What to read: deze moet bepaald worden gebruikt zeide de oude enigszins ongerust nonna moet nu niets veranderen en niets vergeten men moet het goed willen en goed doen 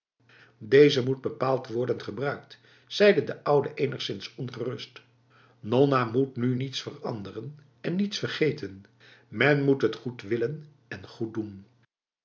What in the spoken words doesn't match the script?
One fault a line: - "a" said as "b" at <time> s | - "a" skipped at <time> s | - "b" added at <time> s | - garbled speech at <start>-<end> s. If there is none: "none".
none